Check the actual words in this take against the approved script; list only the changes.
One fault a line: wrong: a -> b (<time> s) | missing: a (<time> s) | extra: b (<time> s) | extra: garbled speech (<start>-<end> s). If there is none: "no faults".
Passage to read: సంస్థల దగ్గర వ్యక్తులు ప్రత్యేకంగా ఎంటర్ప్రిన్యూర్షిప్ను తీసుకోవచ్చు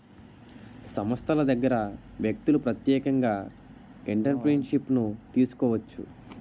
no faults